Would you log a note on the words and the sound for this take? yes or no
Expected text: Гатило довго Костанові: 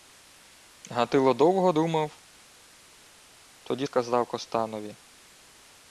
yes